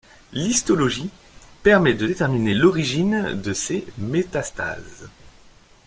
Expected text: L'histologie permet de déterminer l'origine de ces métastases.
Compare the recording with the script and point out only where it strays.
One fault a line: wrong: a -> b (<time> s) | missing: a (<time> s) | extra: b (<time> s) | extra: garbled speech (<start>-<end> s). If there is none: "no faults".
no faults